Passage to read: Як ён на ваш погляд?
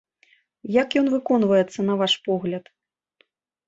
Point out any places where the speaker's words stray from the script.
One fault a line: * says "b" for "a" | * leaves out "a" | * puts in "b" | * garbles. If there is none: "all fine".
* puts in "выконваецца"